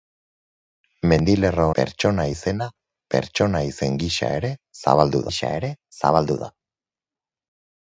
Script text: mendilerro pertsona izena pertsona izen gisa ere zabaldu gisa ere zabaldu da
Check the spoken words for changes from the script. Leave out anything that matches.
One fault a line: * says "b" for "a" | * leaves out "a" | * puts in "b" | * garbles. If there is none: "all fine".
all fine